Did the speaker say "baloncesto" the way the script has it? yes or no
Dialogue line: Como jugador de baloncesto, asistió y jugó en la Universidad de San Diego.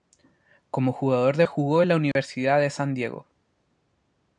no